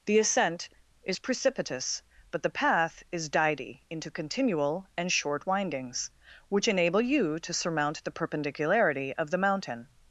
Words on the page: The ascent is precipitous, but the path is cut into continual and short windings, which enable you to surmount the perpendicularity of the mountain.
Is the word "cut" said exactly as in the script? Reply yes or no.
no